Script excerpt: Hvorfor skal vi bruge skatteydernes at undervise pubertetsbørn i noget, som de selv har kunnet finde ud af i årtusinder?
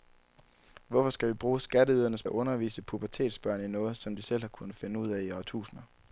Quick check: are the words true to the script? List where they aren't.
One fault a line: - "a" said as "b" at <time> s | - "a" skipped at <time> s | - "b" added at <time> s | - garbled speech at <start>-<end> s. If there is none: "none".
none